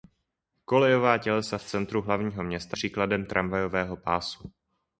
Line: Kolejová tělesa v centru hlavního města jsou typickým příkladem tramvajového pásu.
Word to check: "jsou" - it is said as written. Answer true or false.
false